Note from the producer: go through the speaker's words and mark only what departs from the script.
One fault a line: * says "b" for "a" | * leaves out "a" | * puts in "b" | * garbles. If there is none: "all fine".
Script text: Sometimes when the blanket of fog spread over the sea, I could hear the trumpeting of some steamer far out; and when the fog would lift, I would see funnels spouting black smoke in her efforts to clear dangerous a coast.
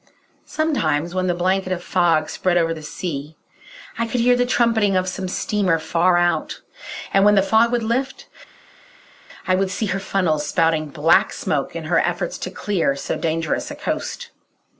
* puts in "her"
* puts in "so"